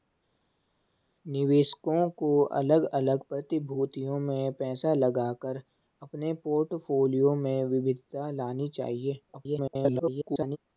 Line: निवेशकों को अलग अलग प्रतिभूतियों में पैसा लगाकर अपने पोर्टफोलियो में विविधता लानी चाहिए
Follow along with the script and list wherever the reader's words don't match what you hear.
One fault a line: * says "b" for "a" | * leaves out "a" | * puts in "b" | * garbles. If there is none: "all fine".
* garbles